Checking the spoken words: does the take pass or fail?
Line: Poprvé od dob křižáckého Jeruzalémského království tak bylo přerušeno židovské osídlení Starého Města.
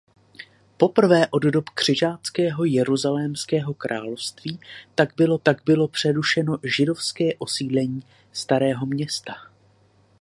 fail